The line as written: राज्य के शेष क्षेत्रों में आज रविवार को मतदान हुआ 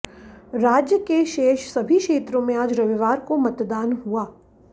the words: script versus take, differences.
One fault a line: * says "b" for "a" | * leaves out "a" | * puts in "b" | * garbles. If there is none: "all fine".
* puts in "सभी"